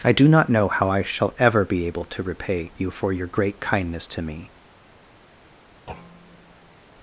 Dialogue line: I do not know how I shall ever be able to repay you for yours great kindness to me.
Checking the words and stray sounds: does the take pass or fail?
fail